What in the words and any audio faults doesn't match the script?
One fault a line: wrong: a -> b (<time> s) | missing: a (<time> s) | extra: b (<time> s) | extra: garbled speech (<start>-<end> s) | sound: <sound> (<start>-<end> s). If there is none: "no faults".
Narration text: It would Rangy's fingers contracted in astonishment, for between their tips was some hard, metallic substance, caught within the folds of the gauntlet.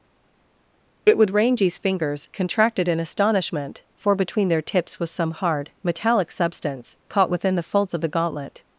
no faults